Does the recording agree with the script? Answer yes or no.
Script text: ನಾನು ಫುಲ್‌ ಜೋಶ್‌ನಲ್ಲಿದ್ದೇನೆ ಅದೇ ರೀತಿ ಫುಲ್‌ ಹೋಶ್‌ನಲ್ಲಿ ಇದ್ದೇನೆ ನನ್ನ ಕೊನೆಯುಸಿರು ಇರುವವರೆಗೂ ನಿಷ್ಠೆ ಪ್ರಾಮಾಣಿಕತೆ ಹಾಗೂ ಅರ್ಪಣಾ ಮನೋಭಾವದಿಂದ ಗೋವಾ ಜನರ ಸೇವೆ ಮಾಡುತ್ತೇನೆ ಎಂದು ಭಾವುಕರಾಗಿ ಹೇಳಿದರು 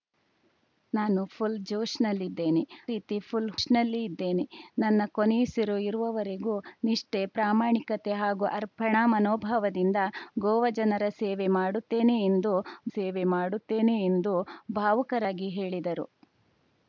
no